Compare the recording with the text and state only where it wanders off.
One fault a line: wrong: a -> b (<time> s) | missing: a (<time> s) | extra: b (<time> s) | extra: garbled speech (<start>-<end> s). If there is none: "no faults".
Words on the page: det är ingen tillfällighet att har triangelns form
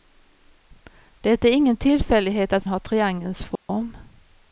no faults